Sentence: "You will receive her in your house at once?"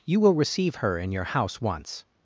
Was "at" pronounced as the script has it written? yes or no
no